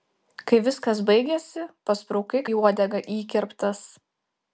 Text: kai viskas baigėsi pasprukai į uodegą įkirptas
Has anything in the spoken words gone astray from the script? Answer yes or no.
no